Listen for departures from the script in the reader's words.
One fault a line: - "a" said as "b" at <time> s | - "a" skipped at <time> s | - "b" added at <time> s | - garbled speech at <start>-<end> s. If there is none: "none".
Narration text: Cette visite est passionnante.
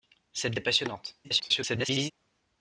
- "visite" skipped at 0.6 s
- garbled speech at 1.2-2.1 s